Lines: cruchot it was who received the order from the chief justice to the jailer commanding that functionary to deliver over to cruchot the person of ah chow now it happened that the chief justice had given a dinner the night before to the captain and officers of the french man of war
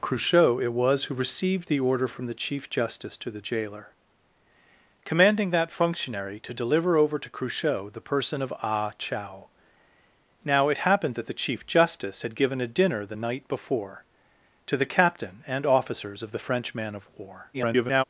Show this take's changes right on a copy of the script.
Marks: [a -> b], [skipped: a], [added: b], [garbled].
cruchot it was who received the order from the chief justice to the jailer commanding that functionary to deliver over to cruchot the person of ah chow now it happened that the chief justice had given a dinner the night before to the captain and officers of the french man of war [garbled]